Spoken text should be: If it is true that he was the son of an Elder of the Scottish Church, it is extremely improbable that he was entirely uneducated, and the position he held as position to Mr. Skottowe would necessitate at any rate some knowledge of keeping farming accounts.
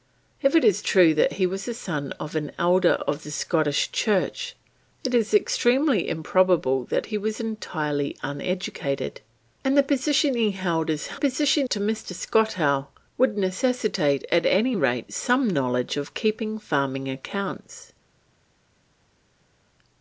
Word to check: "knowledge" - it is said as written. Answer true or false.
true